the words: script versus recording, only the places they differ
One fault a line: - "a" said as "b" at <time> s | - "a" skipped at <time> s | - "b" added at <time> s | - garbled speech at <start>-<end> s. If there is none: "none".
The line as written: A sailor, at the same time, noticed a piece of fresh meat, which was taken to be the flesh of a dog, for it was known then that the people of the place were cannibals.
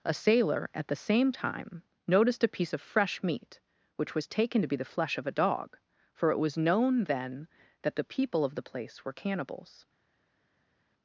none